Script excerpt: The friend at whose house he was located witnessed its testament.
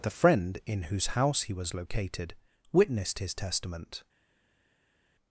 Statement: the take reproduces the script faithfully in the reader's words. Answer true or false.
false